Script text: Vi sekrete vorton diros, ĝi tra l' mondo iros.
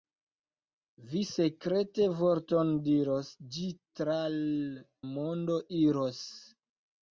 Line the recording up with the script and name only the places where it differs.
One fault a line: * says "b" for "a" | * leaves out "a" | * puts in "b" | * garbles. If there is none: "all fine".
all fine